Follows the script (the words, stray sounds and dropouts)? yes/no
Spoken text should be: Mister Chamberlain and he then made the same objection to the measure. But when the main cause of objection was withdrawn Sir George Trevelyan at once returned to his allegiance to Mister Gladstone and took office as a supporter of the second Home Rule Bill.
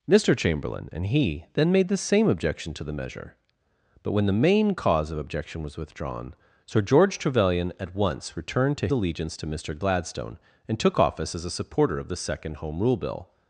no